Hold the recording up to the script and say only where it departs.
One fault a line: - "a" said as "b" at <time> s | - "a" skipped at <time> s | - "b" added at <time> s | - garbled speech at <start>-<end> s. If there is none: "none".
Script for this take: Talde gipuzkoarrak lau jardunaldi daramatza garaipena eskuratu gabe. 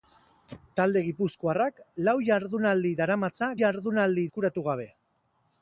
- "garaipena" said as "jardunaldi" at 3.6 s